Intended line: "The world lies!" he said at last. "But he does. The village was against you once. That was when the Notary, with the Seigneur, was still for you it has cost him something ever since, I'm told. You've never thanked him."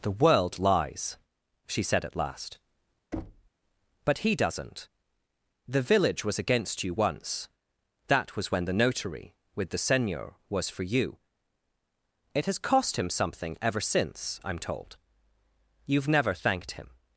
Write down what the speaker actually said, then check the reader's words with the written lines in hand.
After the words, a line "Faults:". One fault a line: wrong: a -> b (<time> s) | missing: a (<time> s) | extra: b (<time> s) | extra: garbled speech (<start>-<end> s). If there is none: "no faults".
"The world lies!" she said at last. "But he doesn't. The village was against you once. That was when the Notary, with the Seigneur, was for you it has cost him something ever since, I'm told. You've never thanked him."
Faults:
wrong: he -> she (1.7 s)
wrong: does -> doesn't (4.3 s)
missing: still (10.7 s)